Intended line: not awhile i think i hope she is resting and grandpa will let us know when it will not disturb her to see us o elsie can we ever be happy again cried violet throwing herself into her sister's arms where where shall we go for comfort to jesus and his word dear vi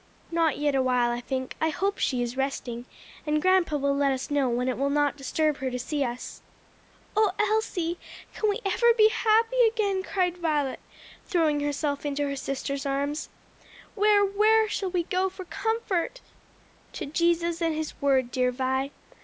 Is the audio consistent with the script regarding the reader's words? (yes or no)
no